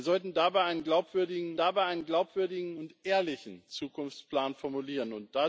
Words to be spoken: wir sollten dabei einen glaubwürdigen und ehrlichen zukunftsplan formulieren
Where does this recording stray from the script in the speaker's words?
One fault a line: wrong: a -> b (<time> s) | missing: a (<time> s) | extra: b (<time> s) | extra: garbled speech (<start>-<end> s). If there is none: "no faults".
extra: dabei einen glaubwürdigen (1.6 s)